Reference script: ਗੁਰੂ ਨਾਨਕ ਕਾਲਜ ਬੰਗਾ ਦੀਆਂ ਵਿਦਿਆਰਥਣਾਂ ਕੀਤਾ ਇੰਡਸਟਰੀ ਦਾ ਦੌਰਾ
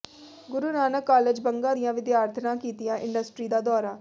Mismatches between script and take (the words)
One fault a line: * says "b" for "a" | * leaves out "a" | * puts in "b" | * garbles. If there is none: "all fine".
all fine